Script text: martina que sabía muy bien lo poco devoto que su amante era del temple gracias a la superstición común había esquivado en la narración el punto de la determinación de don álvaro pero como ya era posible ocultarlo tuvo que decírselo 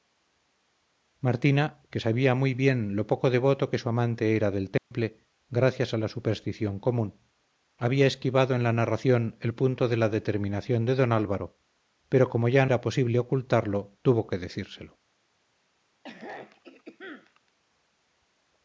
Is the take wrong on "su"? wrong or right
right